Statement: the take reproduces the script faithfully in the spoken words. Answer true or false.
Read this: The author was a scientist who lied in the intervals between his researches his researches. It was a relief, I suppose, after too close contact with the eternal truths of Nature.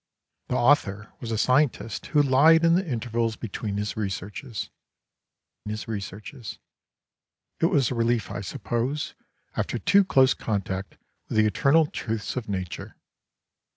true